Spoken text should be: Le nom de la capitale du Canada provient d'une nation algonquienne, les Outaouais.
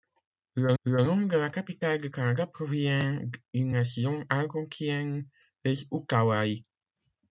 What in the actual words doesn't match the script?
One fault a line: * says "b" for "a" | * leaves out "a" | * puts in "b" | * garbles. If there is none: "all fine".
* puts in "le"